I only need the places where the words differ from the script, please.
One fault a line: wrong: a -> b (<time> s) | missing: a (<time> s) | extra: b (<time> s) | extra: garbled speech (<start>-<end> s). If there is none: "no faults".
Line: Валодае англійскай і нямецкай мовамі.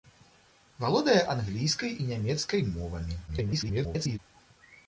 extra: garbled speech (3.3-4.2 s)